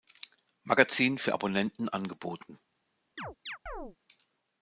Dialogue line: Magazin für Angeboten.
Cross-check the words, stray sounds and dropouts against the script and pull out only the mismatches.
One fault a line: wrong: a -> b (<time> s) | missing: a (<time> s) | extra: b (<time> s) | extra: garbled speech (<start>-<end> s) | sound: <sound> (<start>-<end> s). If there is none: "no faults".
extra: Abonnenten (1.3 s)
sound: chirp (3.2-4.0 s)